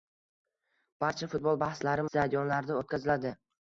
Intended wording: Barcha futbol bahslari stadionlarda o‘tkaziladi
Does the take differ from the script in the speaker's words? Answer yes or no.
no